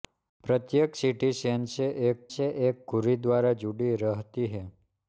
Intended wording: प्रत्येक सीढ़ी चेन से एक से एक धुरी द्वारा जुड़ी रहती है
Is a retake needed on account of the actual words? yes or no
no